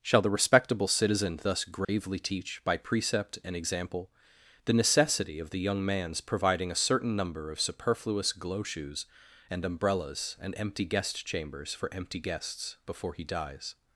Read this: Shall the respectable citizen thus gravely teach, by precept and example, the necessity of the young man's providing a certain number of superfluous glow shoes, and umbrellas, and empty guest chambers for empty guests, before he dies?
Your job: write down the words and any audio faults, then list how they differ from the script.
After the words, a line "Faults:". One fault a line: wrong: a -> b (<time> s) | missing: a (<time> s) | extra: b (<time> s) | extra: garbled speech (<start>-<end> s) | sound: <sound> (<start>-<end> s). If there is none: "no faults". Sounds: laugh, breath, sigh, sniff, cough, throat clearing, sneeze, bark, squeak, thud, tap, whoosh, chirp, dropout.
Shall the respectable citizen thus gravely teach, by precept and example, the necessity of the young man's providing a certain number of superfluous glow shoes, and umbrellas, and empty guest chambers for empty guests, before he dies?
Faults:
sound: dropout (1.8-1.9 s)